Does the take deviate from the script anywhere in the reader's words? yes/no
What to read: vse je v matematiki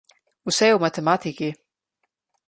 no